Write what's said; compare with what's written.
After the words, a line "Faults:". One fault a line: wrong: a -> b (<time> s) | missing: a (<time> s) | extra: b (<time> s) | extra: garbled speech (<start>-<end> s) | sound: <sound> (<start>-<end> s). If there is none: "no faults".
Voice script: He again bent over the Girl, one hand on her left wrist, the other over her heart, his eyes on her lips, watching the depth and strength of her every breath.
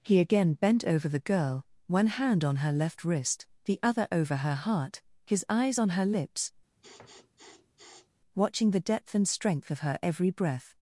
He again bent over the Girl, one hand on her left wrist, the other over her heart, his eyes on her lips, watching the depth and strength of her every breath.
Faults:
sound: sniff (6.8-8.1 s)